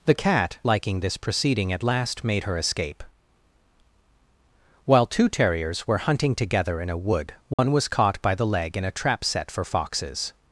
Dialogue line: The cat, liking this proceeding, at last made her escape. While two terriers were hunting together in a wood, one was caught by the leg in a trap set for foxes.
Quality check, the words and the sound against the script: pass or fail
fail